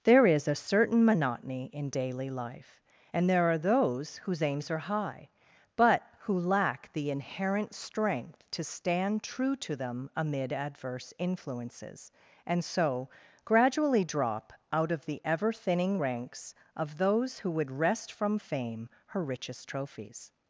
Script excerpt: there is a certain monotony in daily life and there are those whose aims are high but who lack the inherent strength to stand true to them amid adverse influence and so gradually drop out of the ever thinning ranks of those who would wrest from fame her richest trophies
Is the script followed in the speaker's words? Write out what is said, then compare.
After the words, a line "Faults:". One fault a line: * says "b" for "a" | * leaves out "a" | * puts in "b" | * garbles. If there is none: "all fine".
there is a certain monotony in daily life and there are those whose aims are high but who lack the inherent strength to stand true to them amid adverse influences and so gradually drop out of the ever thinning ranks of those who would wrest from fame her richest trophies
Faults:
* says "influences" for "influence"